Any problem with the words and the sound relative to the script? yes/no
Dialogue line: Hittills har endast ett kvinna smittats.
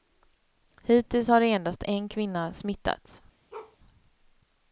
yes